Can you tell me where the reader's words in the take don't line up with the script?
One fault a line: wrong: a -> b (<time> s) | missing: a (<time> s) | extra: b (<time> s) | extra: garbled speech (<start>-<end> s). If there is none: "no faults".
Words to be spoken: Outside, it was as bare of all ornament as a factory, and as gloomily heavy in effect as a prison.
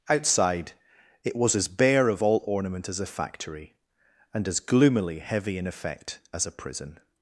no faults